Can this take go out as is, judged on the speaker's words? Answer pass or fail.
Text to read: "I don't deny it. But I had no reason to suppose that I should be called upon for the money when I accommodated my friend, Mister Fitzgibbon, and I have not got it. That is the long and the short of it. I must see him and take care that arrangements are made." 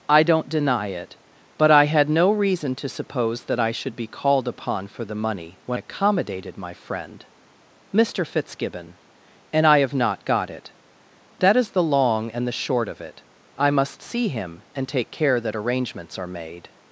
fail